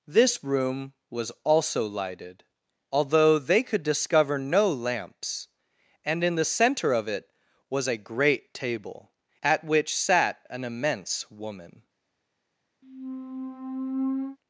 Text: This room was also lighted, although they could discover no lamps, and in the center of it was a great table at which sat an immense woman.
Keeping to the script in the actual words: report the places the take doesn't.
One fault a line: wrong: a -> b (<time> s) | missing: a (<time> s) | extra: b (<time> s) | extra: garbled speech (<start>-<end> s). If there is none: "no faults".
no faults